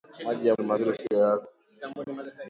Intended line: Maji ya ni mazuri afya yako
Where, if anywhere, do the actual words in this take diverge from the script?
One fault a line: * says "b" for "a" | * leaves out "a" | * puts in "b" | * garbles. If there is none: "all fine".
all fine